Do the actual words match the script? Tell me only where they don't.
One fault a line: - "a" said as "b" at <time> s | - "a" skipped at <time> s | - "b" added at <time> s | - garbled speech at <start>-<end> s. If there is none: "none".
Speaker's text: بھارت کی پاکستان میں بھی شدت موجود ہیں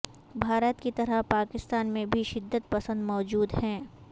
- "طرح" added at 0.9 s
- "پسند" added at 2.7 s